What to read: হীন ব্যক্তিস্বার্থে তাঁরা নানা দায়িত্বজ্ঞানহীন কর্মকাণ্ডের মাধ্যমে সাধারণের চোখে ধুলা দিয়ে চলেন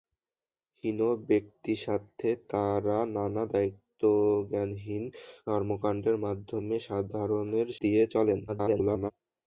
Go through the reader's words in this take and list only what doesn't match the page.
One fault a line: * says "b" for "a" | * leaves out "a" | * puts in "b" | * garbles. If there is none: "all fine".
* leaves out "চোখে ধুলা"
* garbles